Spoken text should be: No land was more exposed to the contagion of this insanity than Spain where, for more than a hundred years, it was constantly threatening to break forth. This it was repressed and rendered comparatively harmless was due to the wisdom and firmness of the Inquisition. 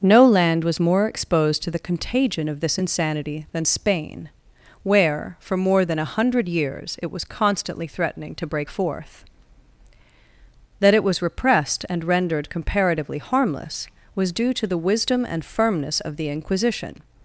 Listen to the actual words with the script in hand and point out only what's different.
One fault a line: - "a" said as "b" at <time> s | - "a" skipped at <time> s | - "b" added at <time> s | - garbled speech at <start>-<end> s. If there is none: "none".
- "This" said as "That" at 10.8 s